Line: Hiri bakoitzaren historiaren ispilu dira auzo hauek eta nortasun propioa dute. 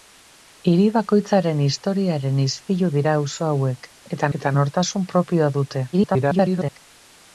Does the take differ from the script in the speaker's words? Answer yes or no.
yes